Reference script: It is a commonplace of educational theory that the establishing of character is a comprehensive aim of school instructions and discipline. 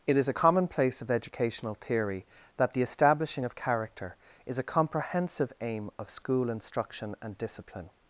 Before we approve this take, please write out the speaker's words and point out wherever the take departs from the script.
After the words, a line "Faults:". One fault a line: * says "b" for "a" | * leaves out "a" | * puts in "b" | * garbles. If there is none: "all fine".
It is a commonplace of educational theory that the establishing of character is a comprehensive aim of school instruction and discipline.
Faults:
* says "instruction" for "instructions"